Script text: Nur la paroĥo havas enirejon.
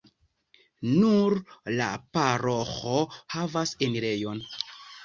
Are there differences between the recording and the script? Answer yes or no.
no